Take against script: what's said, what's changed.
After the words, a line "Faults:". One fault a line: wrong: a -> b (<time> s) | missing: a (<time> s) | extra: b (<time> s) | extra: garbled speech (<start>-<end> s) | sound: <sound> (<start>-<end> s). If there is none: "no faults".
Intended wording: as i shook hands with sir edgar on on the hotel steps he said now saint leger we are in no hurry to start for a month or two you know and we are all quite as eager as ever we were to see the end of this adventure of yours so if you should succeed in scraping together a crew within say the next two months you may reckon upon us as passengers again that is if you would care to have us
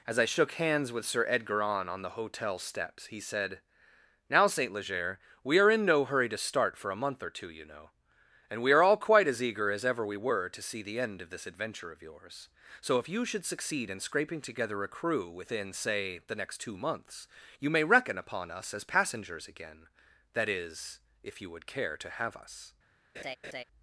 as i shook hands with sir edgar on on the hotel steps he said now saint leger we are in no hurry to start for a month or two you know and we are all quite as eager as ever we were to see the end of this adventure of yours so if you should succeed in scraping together a crew within say the next two months you may reckon upon us as passengers again that is if you would care to have us
Faults:
sound: laugh (23.1-23.6 s)